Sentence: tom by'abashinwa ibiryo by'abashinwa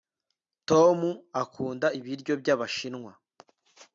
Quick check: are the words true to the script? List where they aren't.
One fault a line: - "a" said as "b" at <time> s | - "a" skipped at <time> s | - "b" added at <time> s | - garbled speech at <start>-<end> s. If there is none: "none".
- "by'abashinwa" said as "akunda" at 1.4 s